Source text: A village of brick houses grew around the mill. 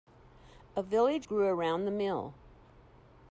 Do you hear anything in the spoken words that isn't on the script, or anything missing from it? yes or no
yes